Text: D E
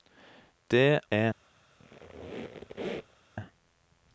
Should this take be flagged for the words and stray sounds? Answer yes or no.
yes